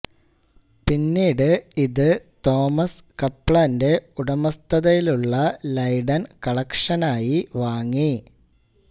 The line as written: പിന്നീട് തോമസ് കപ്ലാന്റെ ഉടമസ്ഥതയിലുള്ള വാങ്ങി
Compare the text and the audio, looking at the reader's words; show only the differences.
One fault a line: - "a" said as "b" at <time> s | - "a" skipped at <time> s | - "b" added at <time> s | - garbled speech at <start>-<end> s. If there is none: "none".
- "ഇത്" added at 1.8 s
- "ലൈഡൻ കളക്ഷനായി" added at 5.7 s